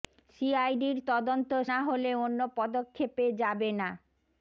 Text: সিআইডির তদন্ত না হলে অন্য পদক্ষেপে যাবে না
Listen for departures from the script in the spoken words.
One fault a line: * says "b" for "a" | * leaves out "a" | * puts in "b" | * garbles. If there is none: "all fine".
all fine